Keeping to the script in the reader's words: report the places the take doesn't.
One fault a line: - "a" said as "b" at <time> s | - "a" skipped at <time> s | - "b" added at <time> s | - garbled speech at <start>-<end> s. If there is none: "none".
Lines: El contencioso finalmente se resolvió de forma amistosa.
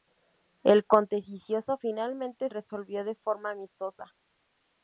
- "se" skipped at 2.5 s